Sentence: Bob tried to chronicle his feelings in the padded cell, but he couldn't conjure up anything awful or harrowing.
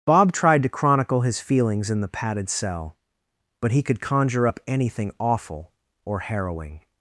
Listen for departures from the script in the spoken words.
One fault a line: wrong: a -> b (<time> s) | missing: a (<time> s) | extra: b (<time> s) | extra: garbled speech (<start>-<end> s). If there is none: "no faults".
wrong: couldn't -> could (3.8 s)